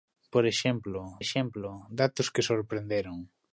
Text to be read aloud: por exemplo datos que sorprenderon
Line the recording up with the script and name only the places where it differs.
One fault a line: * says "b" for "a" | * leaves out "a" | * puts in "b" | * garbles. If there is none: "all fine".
* puts in "exemplo"